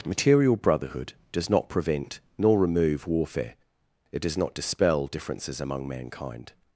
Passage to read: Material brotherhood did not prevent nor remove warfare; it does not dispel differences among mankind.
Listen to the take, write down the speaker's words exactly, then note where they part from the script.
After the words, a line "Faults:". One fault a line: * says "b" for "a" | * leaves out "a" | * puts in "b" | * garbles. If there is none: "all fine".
Material brotherhood does not prevent nor remove warfare; it does not dispel differences among mankind.
Faults:
* says "does" for "did"